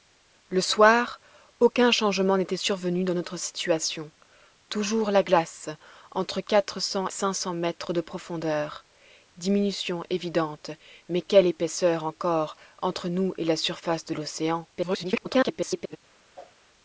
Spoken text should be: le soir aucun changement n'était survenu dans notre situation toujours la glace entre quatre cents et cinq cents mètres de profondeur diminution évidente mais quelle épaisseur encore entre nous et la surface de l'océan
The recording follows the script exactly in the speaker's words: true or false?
false